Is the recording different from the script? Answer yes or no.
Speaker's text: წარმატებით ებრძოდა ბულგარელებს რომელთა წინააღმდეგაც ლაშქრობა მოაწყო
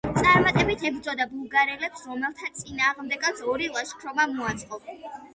yes